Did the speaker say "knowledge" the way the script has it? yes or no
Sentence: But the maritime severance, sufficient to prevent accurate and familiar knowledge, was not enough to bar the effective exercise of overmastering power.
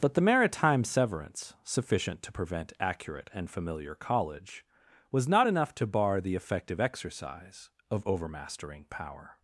no